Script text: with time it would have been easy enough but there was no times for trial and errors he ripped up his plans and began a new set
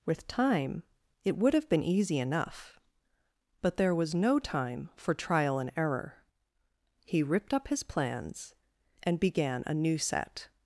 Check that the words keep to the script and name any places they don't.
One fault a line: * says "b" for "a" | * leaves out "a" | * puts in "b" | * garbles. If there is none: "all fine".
* says "time" for "times"
* says "error" for "errors"